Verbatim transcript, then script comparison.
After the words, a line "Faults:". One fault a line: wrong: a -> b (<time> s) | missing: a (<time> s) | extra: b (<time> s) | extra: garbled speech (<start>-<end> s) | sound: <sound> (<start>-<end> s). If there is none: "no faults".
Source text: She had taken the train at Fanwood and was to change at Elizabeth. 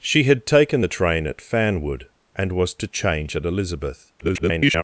She had taken the train at Fanwood and was to change at Elizabeth. [garbled]
Faults:
extra: garbled speech (4.2-4.8 s)